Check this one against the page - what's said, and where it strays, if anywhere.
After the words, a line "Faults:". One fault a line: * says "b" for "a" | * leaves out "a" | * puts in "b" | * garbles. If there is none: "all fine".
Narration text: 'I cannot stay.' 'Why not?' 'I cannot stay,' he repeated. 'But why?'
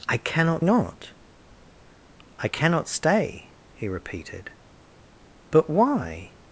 'I cannot not?' 'I cannot stay,' he repeated. 'But why?'
Faults:
* leaves out "stay Why"